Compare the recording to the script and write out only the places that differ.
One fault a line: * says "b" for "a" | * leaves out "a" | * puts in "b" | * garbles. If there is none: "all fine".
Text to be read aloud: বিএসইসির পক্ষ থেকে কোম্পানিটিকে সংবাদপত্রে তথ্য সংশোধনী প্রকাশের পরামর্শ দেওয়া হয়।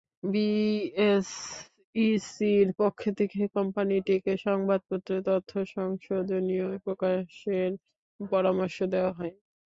all fine